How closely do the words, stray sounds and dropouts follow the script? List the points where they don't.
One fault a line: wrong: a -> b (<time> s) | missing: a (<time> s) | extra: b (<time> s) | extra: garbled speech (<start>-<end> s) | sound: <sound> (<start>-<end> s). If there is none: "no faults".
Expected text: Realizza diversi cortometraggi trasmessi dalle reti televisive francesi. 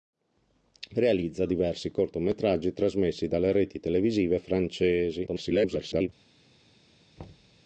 extra: garbled speech (5.3-6.1 s)
sound: thud (7.2-7.6 s)